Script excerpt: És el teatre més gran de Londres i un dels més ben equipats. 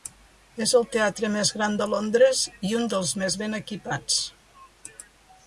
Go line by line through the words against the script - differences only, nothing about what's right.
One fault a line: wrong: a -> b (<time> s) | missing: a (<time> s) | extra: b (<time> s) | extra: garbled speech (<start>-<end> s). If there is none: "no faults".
no faults